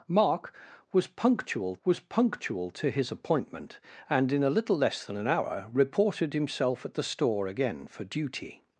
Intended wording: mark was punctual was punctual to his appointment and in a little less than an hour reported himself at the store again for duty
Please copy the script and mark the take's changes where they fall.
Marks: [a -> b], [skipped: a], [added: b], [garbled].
mark was punctual was punctual to his appointment and in a little less than an hour reported himself at the store again for duty